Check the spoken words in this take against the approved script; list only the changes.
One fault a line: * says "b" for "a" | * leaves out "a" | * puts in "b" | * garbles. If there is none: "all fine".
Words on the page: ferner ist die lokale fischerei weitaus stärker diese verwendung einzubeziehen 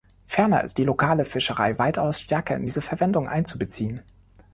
* puts in "in"